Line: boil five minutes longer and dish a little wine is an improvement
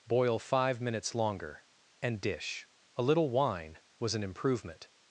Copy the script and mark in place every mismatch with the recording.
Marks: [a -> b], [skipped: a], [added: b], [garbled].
boil five minutes longer and dish a little wine [is -> was] an improvement